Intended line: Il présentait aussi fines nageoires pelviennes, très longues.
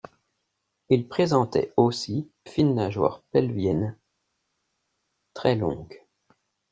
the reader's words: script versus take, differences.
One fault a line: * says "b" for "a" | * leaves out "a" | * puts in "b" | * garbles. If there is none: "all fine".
all fine